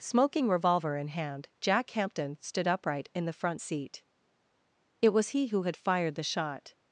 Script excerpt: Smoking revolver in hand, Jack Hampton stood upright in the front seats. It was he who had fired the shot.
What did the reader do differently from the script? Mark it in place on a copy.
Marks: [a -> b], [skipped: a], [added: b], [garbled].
Smoking revolver in hand, Jack Hampton stood upright in the front [seats. -> seat] It was he who had fired the shot.